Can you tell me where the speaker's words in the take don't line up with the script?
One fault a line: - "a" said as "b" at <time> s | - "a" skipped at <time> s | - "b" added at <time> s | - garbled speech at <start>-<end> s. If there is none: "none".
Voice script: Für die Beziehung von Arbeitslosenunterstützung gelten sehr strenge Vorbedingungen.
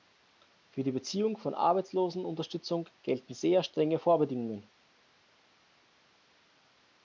none